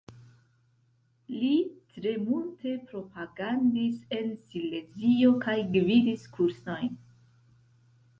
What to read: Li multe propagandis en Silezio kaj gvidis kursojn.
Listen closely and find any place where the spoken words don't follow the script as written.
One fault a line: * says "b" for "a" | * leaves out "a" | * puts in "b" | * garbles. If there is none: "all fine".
* puts in "tre"